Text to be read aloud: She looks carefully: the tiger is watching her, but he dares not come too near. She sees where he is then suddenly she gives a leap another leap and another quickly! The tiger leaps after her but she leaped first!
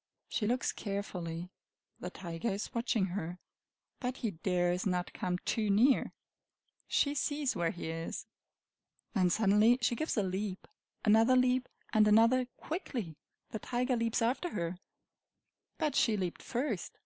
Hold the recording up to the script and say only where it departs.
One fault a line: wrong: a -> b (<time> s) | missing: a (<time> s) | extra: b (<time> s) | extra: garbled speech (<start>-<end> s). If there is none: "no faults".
no faults